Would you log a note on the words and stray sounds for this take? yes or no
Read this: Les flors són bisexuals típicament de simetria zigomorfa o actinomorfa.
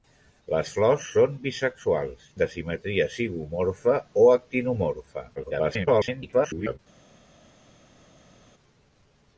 yes